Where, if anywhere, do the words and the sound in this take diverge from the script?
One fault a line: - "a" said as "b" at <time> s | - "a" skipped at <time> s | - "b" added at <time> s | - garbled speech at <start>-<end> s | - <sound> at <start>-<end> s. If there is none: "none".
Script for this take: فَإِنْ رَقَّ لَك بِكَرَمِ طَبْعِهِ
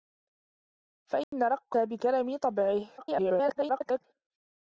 - dropout at 1.2-1.3 s
- "لَك" skipped at 1.8 s
- garbled speech at 3.0-4.0 s